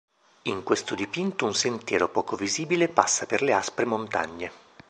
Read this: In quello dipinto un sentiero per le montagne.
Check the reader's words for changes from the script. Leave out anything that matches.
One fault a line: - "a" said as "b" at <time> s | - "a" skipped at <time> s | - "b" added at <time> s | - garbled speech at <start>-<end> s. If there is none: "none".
- "quello" said as "questo" at 0.6 s
- "poco visibile passa" added at 2.1 s
- "aspre" added at 3.5 s